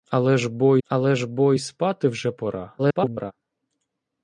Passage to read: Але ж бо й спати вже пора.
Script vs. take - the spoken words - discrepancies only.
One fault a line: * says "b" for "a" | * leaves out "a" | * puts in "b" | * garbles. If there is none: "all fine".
* puts in "але ж бо"
* garbles